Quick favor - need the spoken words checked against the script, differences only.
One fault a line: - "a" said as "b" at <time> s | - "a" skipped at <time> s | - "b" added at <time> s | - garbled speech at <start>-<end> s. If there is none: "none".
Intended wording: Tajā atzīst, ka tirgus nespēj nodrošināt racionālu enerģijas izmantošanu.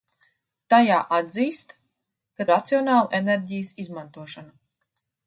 - "tirgus nespēj nodrošināt" skipped at 2.5 s